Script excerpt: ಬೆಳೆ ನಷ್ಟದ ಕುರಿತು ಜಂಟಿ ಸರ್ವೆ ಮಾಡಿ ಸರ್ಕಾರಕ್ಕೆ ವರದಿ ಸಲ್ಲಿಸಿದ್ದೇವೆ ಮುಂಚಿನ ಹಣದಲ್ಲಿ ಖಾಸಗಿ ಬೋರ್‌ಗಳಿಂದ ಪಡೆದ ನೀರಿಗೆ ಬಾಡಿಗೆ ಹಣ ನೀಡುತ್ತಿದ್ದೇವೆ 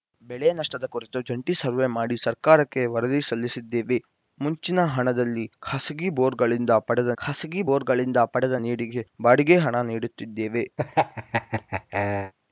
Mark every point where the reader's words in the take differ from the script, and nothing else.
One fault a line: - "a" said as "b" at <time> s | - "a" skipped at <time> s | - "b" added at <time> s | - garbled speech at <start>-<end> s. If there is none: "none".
- "ಖಾಸಗಿ ಬೋರ್‌ಗಳಿಂದ ಪಡೆದ" added at 7.2 s